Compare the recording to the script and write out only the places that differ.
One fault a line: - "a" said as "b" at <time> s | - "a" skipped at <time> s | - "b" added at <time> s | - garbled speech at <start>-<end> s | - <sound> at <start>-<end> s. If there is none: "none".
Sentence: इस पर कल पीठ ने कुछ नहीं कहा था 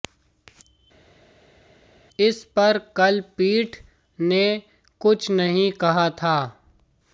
none